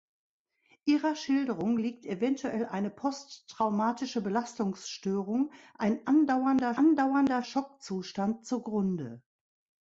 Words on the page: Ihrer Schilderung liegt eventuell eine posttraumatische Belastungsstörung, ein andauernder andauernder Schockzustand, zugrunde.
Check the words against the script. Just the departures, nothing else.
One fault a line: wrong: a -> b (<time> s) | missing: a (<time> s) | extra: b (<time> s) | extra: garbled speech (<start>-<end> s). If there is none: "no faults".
no faults